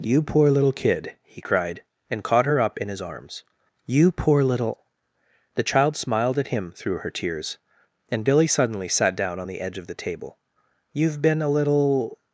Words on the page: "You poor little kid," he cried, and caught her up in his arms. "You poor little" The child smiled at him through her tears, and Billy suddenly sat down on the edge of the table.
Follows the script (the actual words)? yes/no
no